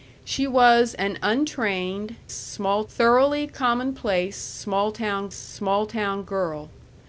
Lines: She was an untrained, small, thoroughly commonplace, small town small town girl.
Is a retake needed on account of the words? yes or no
no